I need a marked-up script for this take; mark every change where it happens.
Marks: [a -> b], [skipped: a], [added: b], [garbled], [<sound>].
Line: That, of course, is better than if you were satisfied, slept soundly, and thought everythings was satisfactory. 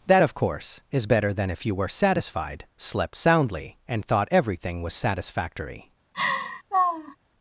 That, of course, is better than if you were satisfied, slept soundly, and thought [everythings -> everything] was satisfactory. [laugh]